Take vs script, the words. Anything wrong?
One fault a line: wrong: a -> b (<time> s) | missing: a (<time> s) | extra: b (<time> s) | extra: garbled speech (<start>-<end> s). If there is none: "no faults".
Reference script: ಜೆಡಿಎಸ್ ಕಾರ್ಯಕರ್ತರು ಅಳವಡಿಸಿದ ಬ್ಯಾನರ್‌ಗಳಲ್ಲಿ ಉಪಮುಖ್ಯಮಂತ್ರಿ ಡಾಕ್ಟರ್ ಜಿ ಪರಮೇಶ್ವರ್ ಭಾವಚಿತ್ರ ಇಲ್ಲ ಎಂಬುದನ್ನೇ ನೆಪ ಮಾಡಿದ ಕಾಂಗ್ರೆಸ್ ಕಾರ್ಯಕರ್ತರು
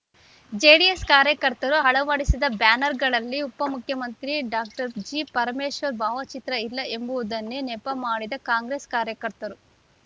no faults